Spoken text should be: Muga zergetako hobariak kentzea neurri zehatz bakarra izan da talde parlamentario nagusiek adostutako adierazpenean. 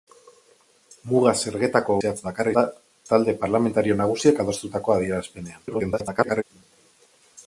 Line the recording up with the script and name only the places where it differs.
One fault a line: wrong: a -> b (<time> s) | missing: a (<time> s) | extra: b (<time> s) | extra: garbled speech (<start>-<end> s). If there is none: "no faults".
missing: hobariak kentzea neurri (2.0 s)
missing: izan (2.5 s)
extra: garbled speech (5.7-6.4 s)